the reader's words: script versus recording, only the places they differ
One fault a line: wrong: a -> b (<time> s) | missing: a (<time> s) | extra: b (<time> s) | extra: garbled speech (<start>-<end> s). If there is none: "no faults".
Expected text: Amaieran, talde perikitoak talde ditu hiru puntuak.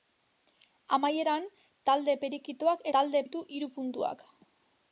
no faults